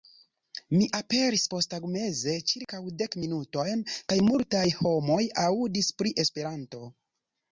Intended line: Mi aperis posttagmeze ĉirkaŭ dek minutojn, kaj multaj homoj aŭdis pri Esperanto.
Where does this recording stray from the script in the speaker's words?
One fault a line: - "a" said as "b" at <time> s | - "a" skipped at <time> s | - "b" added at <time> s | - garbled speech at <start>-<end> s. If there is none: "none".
none